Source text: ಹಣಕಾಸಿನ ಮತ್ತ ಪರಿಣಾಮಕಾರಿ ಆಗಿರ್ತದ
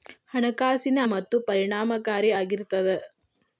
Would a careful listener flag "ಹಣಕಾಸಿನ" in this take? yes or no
no